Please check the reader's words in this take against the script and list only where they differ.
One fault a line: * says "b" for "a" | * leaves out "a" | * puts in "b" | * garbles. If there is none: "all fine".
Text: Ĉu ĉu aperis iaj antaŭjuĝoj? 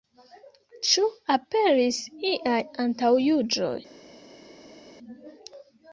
* leaves out "ĉu"